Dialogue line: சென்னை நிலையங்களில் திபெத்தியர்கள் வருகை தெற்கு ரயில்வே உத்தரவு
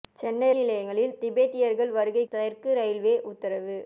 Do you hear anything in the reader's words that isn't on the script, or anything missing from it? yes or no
no